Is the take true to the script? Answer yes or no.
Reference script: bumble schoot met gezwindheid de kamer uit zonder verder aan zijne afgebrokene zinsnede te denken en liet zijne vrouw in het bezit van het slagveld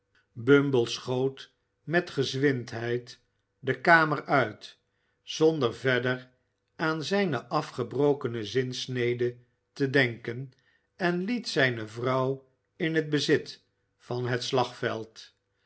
yes